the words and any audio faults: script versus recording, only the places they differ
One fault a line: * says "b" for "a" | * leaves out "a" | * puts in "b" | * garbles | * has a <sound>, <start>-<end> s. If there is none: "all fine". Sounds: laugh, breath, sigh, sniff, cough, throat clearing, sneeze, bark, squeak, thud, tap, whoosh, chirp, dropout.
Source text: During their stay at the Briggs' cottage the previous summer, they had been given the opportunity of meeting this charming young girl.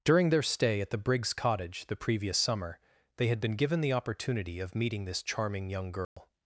* has a dropout, 6.0-6.2 s